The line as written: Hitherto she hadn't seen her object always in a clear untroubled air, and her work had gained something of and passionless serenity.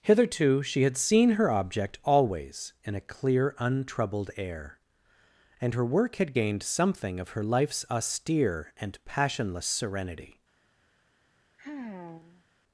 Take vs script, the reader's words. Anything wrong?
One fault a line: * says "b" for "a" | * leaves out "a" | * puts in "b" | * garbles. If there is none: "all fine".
* says "had" for "hadn't"
* puts in "her life's austere"